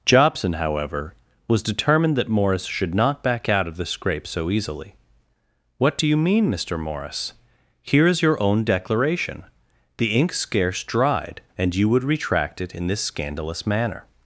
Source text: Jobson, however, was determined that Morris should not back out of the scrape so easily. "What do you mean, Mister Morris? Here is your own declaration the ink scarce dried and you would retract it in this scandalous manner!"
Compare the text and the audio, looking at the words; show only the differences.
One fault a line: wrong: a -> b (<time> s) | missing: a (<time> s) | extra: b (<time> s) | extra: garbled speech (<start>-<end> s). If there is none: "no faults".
no faults